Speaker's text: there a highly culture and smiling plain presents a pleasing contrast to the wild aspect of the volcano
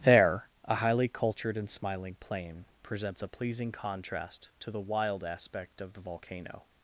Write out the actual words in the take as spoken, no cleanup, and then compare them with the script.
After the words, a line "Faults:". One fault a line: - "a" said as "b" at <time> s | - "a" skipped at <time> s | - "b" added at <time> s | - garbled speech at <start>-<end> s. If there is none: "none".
there a highly cultured and smiling plain presents a pleasing contrast to the wild aspect of the volcano
Faults:
- "culture" said as "cultured" at 1.1 s